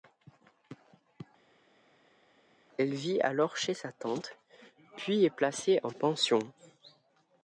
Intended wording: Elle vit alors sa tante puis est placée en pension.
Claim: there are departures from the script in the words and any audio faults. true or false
true